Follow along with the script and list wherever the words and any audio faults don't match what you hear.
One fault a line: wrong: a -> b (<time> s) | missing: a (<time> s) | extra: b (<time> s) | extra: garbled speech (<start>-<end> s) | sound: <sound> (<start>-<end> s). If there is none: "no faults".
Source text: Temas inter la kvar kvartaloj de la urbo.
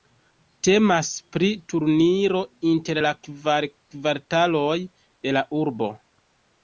extra: pri turniro (1.4 s)